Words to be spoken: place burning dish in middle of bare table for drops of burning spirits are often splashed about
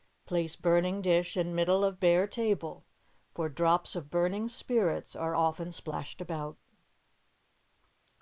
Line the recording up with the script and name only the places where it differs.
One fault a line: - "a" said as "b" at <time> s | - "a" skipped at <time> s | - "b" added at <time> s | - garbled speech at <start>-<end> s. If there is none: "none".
none